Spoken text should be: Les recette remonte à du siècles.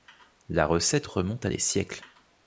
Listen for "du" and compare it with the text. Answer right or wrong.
wrong